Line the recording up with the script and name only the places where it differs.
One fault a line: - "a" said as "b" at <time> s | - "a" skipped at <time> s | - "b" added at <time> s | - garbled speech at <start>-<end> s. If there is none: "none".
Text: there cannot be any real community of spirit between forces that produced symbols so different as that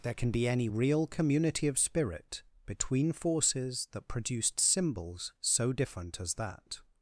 - "cannot" said as "can" at 0.1 s